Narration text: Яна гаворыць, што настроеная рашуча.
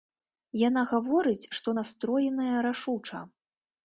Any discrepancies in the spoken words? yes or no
no